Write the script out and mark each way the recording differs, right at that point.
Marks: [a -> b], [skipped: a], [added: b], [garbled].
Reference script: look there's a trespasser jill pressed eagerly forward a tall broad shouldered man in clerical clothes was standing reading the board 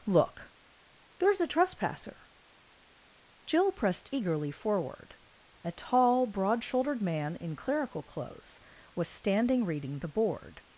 look there's a trespasser jill pressed eagerly forward a tall broad shouldered man in clerical clothes was standing reading the board